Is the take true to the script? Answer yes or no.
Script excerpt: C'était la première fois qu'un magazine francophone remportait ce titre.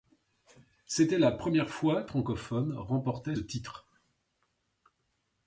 no